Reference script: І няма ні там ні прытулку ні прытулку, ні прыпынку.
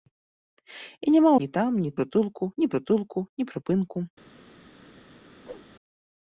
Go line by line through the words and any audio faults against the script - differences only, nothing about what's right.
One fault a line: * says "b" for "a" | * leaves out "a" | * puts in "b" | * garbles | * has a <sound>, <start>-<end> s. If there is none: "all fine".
* has a whoosh, 5.4-5.7 s